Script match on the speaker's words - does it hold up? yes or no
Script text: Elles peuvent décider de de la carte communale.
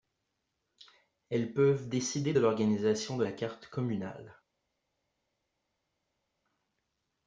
no